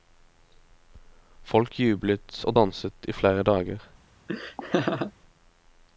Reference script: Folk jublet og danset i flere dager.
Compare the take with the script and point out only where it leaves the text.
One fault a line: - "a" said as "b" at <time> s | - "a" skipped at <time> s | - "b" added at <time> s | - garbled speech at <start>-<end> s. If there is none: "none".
none